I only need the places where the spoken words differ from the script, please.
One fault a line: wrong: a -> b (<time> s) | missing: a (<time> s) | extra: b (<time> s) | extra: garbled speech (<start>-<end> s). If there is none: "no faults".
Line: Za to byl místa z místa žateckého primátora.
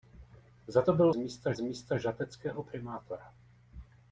no faults